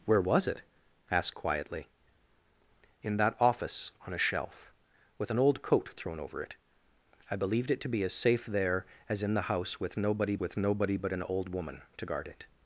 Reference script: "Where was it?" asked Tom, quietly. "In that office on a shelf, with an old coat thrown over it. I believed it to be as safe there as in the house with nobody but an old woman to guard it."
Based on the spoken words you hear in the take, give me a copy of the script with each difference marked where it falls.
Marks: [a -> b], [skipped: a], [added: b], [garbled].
"Where was it?" asked [skipped: Tom,] quietly. "In that office on a shelf, with an old coat thrown over it. I believed it to be as safe there as in the house with nobody [added: with nobody] but an old woman to guard it."